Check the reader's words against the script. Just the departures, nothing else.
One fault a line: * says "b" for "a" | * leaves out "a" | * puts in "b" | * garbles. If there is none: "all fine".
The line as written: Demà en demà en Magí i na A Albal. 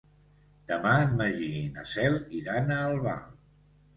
* leaves out "demà en"
* puts in "Cel iran"